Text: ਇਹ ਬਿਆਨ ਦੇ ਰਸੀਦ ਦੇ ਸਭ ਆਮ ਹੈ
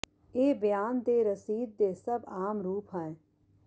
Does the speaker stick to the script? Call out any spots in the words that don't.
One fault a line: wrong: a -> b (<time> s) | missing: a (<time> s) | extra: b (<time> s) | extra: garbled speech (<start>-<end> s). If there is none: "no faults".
extra: ਰੂਪ (2.6 s)